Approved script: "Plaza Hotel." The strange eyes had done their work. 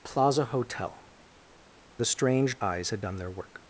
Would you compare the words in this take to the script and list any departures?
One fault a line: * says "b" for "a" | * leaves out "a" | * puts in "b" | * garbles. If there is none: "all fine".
all fine